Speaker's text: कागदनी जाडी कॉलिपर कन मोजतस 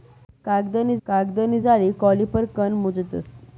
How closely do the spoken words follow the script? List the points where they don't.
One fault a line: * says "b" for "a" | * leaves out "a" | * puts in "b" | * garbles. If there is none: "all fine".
* puts in "कागदनी"